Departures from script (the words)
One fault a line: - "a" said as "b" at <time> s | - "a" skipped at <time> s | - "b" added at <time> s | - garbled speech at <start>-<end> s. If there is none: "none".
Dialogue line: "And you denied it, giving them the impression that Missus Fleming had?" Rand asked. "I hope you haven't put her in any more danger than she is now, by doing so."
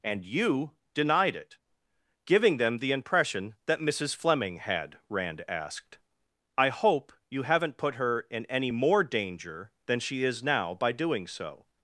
none